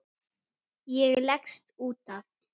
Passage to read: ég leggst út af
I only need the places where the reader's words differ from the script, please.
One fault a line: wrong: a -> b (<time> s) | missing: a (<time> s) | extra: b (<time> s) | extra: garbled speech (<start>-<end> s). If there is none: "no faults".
no faults